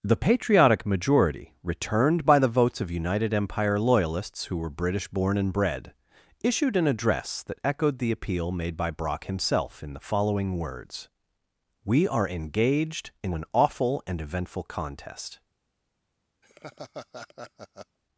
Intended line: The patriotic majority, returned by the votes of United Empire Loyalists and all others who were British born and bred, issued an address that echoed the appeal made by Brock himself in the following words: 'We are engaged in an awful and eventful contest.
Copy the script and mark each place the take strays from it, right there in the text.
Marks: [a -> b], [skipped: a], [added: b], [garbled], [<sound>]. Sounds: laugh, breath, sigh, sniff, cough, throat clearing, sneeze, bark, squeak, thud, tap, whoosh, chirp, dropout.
The patriotic majority, returned by the votes of United Empire Loyalists [skipped: and all others] who were British born and bred, issued an address that echoed the appeal made by Brock himself in the following words: 'We are engaged in an awful and eventful contest. [laugh]